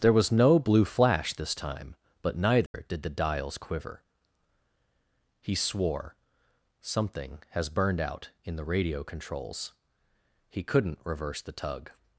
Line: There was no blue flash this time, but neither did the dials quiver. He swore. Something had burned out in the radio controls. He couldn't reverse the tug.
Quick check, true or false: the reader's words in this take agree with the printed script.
false